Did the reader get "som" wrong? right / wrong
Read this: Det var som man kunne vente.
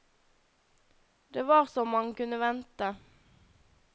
right